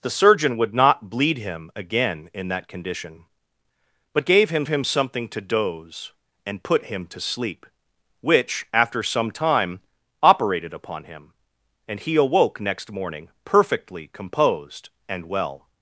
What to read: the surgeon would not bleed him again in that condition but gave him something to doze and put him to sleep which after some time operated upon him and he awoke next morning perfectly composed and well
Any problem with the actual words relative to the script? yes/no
yes